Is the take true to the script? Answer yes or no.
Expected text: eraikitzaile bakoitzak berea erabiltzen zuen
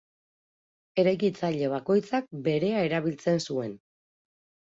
yes